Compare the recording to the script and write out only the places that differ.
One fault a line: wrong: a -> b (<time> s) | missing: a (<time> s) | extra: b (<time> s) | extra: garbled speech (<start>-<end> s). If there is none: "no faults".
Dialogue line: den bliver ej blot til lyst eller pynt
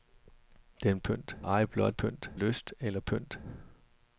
wrong: bliver -> pynt (1.0 s)
wrong: til -> pynt (1.9 s)